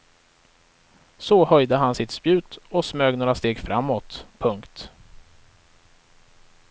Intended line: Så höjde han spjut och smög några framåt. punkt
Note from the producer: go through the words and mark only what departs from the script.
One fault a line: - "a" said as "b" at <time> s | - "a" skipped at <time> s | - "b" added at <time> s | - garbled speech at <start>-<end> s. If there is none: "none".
- "sitt" added at 1.9 s
- "steg" added at 3.3 s